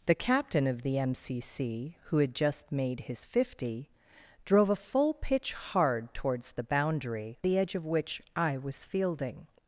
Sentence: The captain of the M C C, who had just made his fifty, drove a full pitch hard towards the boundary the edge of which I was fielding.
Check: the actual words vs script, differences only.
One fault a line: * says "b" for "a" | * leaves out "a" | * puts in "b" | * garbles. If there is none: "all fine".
all fine